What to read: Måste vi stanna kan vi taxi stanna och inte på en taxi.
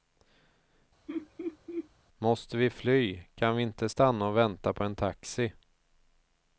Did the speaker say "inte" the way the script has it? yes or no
no